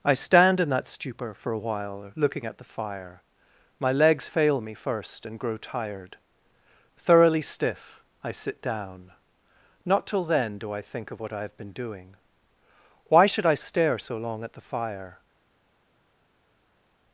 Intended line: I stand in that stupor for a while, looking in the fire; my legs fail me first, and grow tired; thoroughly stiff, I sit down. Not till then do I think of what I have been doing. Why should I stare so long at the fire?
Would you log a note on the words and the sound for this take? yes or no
yes